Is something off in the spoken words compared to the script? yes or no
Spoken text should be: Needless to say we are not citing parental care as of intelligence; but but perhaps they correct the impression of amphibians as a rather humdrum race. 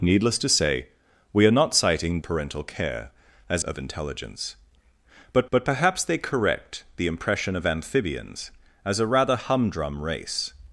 no